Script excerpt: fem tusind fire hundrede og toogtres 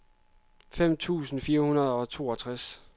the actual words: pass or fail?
pass